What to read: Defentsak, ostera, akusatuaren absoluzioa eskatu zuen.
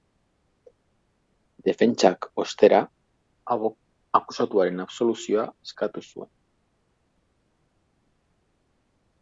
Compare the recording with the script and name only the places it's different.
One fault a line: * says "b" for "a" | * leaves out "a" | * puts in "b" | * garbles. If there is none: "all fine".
all fine